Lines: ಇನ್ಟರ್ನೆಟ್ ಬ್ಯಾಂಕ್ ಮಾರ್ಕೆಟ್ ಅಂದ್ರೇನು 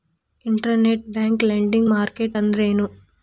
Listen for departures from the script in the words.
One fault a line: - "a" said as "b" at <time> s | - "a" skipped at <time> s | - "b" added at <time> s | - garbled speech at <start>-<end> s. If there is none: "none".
- "ಲೆಂಡಿಂಗ್" added at 1.4 s